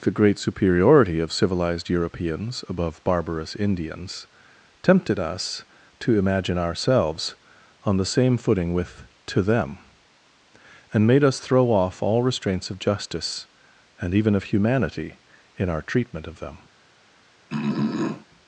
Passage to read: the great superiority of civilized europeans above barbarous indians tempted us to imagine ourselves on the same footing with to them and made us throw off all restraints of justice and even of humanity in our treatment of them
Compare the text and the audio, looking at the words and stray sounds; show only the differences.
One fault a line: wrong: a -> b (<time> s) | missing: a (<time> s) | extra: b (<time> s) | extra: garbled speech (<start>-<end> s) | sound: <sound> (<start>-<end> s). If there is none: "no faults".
sound: throat clearing (17.5-18.3 s)